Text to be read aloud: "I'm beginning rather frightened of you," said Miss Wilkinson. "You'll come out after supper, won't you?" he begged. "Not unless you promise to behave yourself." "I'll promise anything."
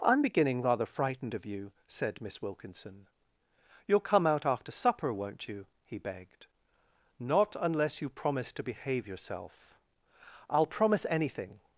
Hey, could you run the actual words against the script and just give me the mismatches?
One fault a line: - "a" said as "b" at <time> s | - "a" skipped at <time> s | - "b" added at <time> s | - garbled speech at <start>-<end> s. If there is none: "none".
none